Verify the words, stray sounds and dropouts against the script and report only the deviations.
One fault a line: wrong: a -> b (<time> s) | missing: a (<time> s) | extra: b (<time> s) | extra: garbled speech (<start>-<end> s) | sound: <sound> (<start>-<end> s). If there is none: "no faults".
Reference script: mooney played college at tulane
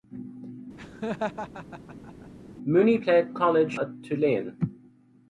sound: laugh (0.8-2.3 s)